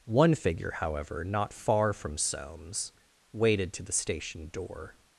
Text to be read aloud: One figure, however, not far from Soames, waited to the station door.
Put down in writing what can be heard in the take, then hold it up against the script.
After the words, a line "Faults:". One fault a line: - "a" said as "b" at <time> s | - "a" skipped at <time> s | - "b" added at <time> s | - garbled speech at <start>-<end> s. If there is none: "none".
One figure, however, not far from Soames, waited to the station door.
Faults:
none